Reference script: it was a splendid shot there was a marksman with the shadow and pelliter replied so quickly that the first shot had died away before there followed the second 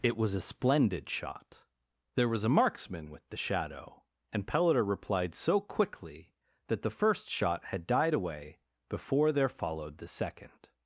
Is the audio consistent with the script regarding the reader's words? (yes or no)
yes